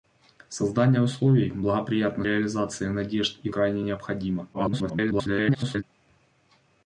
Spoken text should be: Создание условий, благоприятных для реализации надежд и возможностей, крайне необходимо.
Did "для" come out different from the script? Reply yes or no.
yes